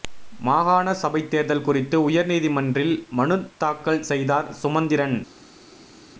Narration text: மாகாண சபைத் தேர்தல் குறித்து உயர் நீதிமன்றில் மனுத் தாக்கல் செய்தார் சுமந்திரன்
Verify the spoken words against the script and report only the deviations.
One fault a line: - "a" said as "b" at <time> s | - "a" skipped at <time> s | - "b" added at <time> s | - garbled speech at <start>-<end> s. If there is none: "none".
none